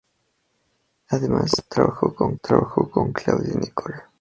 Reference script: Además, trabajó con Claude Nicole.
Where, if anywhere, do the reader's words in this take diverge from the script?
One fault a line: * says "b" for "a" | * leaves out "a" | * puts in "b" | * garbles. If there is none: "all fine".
* puts in "trabajó con"